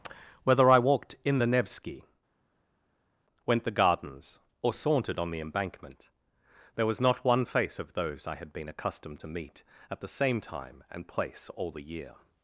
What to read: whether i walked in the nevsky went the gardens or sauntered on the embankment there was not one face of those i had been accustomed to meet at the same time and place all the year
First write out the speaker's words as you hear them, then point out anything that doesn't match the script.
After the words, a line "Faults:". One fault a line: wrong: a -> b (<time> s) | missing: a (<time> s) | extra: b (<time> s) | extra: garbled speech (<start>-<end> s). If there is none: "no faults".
whether i walked in the nevsky went the gardens or sauntered on the embankment there was not one face of those i had been accustomed to meet at the same time and place all the year
Faults:
no faults